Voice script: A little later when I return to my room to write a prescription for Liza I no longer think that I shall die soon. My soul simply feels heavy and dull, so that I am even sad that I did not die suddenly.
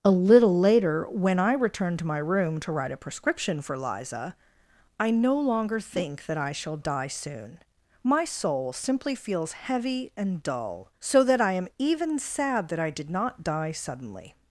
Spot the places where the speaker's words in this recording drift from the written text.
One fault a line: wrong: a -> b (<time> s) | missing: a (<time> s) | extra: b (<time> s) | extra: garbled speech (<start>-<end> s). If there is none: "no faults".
no faults